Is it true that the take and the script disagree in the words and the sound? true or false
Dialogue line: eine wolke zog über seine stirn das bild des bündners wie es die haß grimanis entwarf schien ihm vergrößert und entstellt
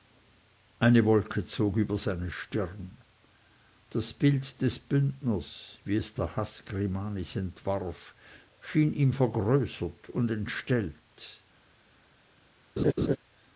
true